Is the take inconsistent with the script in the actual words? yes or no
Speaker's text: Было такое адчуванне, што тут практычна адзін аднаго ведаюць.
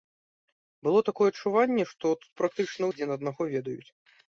no